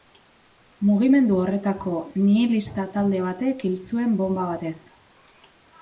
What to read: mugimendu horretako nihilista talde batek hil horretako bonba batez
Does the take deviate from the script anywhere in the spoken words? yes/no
yes